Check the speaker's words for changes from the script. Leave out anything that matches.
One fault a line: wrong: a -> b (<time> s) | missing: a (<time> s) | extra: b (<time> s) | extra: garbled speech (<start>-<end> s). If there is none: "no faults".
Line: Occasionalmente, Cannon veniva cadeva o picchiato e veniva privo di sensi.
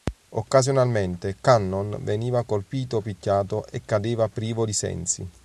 wrong: cadeva -> colpito (2.4 s)
wrong: veniva -> cadeva (3.9 s)